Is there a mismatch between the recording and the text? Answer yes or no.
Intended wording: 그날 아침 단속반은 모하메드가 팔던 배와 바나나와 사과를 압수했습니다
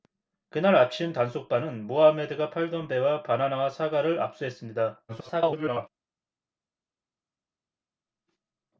yes